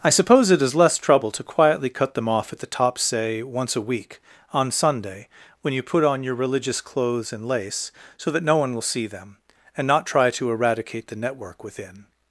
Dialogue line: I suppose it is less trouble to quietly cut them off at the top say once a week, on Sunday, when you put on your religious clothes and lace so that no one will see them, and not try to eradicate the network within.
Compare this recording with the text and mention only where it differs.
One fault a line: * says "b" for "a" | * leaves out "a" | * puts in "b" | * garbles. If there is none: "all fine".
all fine